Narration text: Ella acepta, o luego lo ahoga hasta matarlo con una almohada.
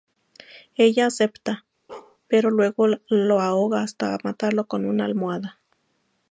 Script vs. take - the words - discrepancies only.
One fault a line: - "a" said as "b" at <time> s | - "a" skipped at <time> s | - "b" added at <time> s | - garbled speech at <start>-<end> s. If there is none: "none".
- "o" said as "pero" at 2.3 s